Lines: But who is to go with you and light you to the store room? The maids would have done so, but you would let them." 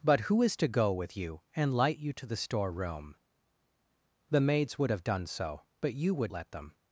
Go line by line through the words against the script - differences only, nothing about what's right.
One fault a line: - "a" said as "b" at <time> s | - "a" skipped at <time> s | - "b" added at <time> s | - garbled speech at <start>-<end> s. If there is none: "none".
none